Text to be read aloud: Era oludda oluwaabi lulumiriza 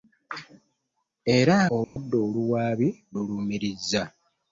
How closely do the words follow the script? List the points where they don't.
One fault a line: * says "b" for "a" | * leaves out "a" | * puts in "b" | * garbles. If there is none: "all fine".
all fine